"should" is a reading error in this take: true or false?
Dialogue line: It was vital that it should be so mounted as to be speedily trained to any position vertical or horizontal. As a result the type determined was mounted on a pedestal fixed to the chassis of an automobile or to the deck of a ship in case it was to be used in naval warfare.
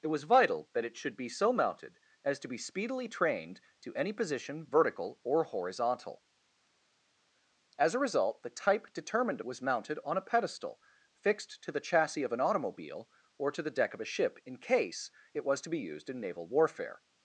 false